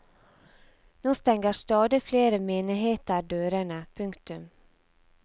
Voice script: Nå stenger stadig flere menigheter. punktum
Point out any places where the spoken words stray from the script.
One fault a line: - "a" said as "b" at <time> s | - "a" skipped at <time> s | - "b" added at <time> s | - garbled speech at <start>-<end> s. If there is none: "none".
- "dørene" added at 3.2 s